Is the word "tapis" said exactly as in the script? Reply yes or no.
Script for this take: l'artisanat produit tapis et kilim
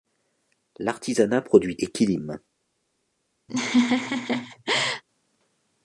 no